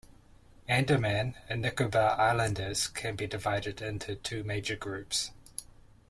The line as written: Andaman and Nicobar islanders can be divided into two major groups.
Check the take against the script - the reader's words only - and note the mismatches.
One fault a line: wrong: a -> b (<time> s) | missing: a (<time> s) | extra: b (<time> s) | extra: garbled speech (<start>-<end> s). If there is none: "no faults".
no faults